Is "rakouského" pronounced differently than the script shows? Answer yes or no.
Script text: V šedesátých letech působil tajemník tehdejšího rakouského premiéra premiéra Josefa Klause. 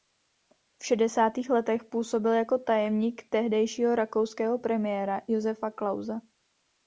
no